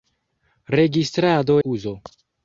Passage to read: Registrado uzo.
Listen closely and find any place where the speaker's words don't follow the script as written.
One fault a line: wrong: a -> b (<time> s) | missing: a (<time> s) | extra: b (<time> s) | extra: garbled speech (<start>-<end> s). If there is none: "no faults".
no faults